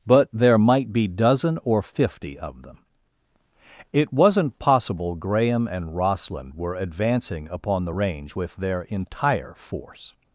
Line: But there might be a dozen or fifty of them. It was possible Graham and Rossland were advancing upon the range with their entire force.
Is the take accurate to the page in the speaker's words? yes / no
no